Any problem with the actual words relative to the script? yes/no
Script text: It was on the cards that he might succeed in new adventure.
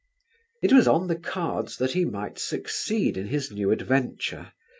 yes